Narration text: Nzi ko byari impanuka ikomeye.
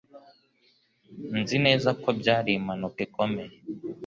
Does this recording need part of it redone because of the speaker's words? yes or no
yes